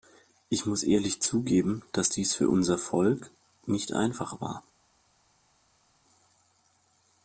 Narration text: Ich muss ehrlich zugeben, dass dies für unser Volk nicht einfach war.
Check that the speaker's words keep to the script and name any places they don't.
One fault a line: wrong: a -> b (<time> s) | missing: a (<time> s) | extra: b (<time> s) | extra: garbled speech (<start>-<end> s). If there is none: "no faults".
no faults